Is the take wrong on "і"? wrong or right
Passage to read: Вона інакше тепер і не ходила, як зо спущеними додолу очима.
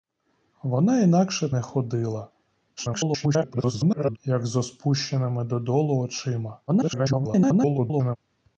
wrong